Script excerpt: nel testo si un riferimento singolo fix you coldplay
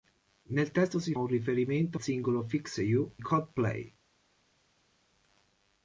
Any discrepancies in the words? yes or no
no